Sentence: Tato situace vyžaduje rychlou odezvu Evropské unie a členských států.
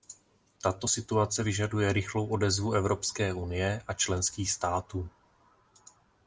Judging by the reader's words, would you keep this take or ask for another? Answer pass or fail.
pass